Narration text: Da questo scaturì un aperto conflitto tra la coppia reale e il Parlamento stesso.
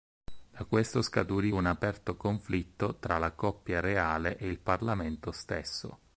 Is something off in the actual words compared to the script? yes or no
no